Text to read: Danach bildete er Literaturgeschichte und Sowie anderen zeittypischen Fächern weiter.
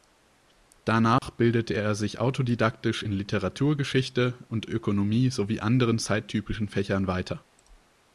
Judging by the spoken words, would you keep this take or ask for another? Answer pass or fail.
fail